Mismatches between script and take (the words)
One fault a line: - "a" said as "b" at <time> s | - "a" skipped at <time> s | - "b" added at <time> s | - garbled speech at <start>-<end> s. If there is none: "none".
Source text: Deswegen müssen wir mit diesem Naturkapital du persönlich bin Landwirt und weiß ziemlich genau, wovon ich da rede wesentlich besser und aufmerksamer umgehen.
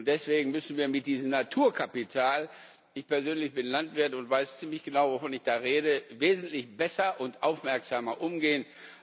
- "du" said as "ich" at 2.9 s